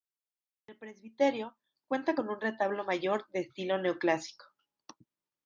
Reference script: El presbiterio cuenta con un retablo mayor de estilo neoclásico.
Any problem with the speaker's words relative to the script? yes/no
no